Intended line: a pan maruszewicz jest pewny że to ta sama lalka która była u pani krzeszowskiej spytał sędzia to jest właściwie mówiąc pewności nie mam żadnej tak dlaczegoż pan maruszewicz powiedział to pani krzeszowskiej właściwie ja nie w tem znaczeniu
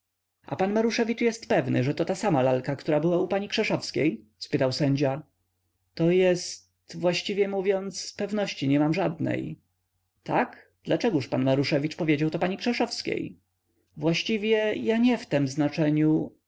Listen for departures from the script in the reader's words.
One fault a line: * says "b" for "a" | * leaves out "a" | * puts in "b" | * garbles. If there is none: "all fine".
all fine